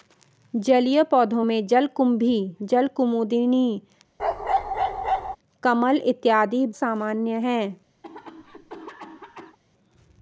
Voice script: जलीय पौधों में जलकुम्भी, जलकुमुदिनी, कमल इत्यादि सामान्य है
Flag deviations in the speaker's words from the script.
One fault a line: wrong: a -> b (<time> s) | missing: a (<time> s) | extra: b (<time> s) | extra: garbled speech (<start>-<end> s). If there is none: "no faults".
no faults